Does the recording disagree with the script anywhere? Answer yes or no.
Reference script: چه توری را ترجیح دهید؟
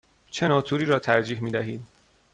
yes